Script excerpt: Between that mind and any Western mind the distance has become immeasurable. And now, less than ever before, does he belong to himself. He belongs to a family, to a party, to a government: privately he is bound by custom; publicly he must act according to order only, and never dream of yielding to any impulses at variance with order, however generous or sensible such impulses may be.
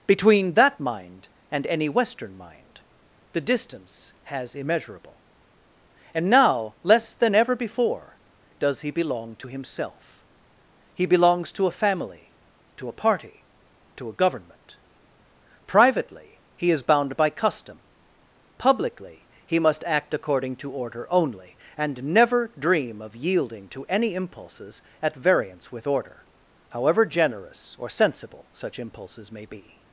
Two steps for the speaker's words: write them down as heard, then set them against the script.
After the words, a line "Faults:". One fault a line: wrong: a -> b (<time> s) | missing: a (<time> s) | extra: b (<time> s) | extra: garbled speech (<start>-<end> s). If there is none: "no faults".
Between that mind and any Western mind the distance has immeasurable. And now, less than ever before, does he belong to himself. He belongs to a family, to a party, to a government: privately he is bound by custom; publicly he must act according to order only, and never dream of yielding to any impulses at variance with order, however generous or sensible such impulses may be.
Faults:
missing: become (4.5 s)